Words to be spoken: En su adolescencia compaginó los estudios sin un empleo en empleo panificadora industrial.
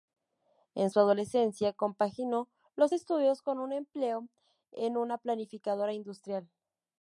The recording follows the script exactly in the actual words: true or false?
false